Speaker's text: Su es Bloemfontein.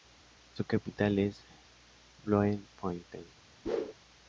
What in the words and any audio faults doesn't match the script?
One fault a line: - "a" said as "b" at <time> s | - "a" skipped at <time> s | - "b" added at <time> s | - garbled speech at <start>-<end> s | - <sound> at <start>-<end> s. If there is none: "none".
- "capital" added at 0.7 s
- whoosh at 3.6-3.9 s